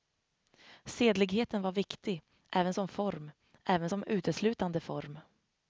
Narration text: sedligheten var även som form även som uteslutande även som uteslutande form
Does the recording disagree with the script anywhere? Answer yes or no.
yes